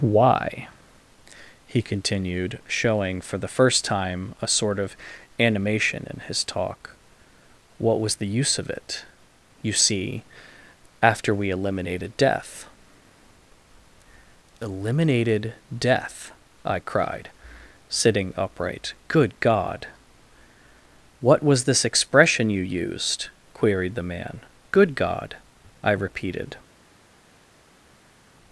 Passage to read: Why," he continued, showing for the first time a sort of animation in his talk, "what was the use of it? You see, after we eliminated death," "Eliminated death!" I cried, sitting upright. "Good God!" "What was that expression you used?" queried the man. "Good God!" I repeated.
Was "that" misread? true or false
true